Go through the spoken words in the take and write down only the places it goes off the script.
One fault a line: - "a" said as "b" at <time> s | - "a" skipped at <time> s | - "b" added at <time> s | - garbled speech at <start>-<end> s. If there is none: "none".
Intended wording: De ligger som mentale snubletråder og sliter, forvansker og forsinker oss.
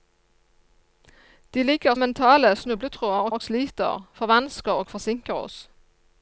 - "som" skipped at 1.9 s
- "og" added at 3.3 s